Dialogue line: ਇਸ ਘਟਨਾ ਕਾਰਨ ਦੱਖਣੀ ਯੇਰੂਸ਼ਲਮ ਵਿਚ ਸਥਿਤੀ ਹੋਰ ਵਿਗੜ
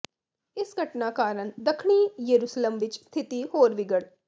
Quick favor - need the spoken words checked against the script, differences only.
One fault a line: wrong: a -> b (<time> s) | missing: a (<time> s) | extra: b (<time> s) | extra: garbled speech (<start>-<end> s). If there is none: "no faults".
no faults